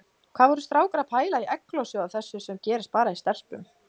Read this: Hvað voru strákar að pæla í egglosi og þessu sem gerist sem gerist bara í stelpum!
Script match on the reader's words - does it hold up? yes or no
no